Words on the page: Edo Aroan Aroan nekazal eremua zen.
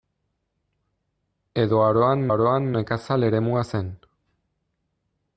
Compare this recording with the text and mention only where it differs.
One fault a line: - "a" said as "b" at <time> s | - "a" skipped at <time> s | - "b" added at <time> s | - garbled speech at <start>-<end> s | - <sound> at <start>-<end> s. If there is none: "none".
none